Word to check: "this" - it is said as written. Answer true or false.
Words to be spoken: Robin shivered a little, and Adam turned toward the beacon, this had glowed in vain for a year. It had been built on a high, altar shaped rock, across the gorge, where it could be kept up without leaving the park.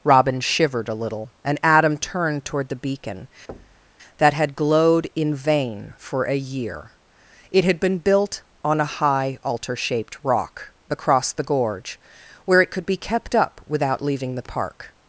false